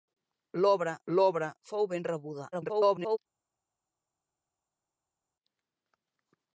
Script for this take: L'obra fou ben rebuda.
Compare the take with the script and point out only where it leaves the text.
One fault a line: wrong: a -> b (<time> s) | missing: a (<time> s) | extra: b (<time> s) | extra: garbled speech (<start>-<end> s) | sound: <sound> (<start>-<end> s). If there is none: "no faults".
extra: l'obra (1.1 s)
extra: garbled speech (2.5-3.2 s)